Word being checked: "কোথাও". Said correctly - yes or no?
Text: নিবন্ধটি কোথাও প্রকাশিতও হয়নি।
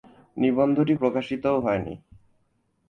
no